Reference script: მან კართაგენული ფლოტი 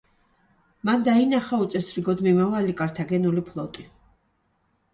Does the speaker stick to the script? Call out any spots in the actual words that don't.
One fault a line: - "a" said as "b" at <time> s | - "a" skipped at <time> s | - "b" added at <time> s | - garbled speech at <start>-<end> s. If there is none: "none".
- "დაინახა უწესრიგოდ მიმავალი" added at 1.1 s